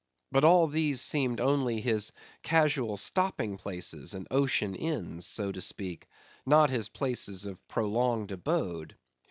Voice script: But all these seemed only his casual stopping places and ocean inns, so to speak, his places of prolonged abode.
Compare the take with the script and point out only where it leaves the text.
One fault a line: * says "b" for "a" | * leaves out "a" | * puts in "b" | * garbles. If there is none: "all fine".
* puts in "not"